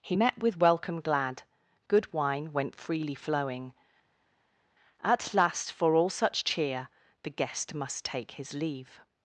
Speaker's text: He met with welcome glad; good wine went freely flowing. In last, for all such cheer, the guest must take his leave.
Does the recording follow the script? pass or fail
fail